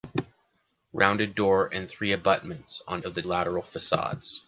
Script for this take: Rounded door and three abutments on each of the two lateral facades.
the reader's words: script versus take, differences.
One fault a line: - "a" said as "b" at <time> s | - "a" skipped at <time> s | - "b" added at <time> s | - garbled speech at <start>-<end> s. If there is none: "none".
- "each" skipped at 3.0 s
- "two" skipped at 3.2 s